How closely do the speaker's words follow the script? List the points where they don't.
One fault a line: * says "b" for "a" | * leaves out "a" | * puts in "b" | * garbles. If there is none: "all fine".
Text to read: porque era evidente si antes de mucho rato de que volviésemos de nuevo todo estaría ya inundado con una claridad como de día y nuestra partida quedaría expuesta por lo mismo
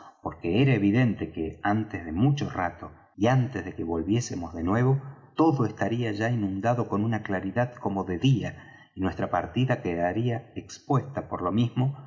* says "que" for "si"
* puts in "y antes"